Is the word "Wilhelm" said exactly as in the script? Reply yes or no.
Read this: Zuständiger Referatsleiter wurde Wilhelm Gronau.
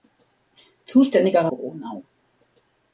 no